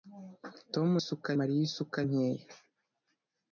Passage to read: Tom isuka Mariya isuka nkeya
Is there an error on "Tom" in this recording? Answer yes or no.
no